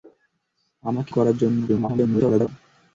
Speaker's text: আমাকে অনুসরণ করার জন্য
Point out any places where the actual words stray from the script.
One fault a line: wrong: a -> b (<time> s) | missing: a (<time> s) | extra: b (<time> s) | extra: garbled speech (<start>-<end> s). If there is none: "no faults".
missing: অনুসরণ (1.1 s)
extra: garbled speech (1.7-2.5 s)